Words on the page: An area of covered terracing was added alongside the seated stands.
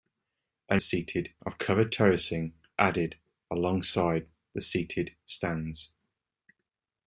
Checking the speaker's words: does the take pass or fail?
fail